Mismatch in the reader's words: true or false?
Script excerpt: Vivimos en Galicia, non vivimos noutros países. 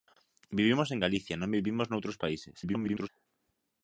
true